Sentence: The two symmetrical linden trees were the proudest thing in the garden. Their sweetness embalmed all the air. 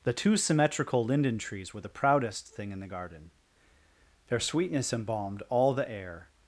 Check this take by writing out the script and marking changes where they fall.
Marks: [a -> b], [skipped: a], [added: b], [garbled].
The two symmetrical linden trees were the proudest thing in the garden. Their sweetness embalmed all the air.